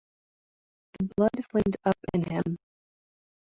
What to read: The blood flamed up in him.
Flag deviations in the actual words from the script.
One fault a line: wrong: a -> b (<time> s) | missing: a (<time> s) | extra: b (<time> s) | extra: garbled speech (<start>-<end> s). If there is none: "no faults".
no faults